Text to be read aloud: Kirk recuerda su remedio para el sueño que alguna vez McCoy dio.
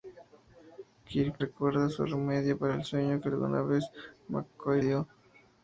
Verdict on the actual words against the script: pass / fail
pass